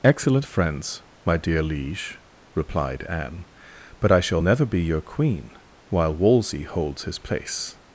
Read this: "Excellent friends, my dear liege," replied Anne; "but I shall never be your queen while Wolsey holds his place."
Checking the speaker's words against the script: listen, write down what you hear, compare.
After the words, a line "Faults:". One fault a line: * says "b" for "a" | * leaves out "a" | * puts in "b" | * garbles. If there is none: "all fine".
"Excellent friends, my dear liege," replied Anne; "but I shall never be your queen while Wolsey holds his place."
Faults:
all fine